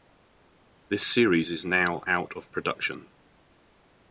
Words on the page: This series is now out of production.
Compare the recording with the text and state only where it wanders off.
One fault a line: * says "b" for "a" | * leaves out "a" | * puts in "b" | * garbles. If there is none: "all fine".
all fine